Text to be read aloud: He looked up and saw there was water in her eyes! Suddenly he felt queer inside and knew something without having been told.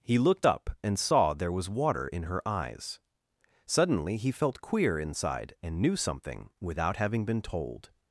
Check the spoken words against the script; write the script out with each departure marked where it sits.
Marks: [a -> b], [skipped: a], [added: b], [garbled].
He looked up and saw there was water in her eyes! Suddenly he felt queer inside and knew something without having been told.